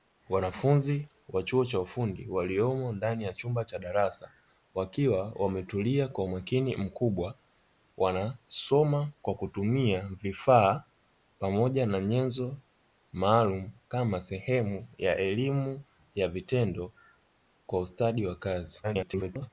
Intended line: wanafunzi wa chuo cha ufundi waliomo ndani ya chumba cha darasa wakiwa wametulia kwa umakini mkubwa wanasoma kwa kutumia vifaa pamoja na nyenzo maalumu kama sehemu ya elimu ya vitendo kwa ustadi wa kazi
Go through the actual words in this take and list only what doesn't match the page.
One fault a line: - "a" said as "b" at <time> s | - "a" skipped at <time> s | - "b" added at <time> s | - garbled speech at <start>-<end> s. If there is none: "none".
- garbled speech at 18.8-19.5 s